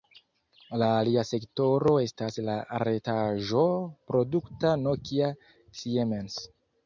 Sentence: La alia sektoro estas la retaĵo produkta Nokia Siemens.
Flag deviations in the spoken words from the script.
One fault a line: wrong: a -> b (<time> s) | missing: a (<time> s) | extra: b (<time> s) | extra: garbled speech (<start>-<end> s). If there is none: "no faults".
no faults